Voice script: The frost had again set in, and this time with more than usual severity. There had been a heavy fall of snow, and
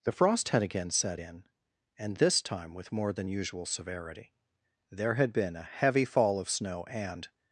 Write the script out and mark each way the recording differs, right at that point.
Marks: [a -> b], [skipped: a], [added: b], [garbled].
The frost had again set in, and this time with more than usual severity. There had been a heavy fall of snow, and